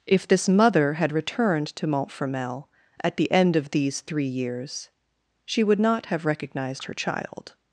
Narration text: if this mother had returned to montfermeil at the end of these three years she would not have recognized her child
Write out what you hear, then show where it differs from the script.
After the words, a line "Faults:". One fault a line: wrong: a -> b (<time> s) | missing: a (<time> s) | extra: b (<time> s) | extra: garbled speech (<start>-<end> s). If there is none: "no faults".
if this mother had returned to montfermeil at the end of these three years she would not have recognized her child
Faults:
no faults